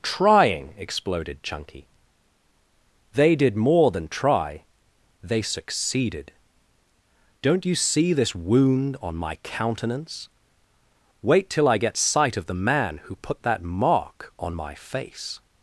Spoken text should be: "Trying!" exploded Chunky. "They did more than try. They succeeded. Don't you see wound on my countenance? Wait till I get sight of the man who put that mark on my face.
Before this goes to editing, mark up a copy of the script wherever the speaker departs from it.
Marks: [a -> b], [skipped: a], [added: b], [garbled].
"Trying!" exploded Chunky. "They did more than try. They succeeded. Don't you see [added: this] wound on my countenance? Wait till I get sight of the man who put that mark on my face.